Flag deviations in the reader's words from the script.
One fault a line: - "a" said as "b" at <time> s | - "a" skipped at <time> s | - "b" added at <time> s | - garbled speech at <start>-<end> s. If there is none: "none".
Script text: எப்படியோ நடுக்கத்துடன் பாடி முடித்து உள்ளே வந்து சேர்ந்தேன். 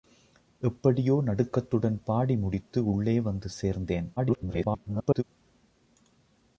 - garbled speech at 4.2-5.2 s